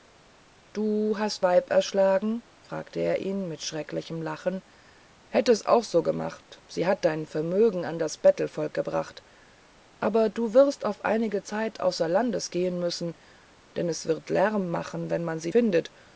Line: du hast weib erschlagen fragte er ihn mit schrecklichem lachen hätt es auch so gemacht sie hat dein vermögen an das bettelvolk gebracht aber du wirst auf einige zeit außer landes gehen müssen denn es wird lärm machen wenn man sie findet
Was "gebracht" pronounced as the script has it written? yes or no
yes